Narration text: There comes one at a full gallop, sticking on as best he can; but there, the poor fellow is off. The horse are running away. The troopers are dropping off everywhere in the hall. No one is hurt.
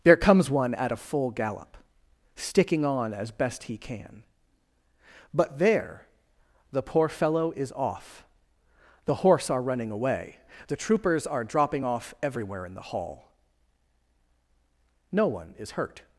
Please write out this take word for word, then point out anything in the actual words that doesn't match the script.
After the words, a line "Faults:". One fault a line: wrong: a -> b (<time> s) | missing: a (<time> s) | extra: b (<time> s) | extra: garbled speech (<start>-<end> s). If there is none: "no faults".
There comes one at a full gallop, sticking on as best he can; but there, the poor fellow is off. The horse are running away. The troopers are dropping off everywhere in the hall. No one is hurt.
Faults:
no faults